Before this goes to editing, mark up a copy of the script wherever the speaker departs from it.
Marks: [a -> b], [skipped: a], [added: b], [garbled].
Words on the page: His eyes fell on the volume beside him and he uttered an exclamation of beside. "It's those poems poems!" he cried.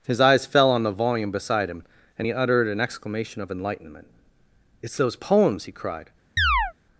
His eyes fell on the volume beside him and he uttered an exclamation of [beside. -> enlightenment] "It's those poems [skipped: poems!"] he cried.